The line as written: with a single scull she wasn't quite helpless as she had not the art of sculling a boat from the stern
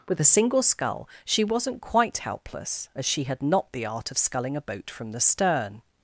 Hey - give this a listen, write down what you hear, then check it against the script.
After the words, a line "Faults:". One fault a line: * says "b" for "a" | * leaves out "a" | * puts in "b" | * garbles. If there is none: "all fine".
with a single scull she wasn't quite helpless as she had not the art of sculling a boat from the stern
Faults:
all fine